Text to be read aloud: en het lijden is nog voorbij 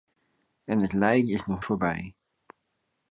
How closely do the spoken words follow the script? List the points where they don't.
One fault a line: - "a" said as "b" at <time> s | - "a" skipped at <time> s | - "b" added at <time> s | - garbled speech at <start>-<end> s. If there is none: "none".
none